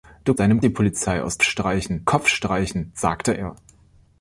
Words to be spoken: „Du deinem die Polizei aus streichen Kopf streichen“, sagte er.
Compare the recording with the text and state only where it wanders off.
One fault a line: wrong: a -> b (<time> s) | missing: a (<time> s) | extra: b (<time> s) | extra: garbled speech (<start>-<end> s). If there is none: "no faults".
no faults